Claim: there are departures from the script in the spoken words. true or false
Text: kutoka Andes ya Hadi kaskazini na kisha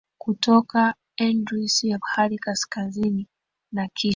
false